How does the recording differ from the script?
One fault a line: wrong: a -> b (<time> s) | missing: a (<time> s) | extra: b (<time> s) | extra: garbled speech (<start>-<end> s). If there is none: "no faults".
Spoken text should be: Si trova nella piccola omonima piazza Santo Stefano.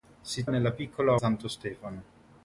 missing: trova (0.5 s)
missing: omonima piazza (1.2 s)